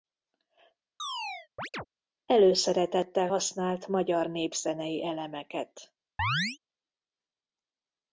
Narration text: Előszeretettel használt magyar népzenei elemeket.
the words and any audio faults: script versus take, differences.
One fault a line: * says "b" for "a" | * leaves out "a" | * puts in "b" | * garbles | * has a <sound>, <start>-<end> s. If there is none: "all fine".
* has a chirp, 1.0-1.9 s
* has a chirp, 6.2-6.6 s